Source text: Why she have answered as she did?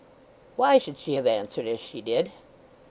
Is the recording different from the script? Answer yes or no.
yes